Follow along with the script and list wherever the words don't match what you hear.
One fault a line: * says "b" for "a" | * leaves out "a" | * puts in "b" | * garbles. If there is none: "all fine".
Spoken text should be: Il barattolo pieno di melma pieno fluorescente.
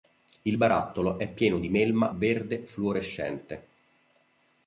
* puts in "è"
* says "verde" for "pieno"